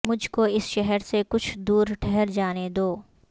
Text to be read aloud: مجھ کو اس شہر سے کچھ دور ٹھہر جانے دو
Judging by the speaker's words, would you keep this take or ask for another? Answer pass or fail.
pass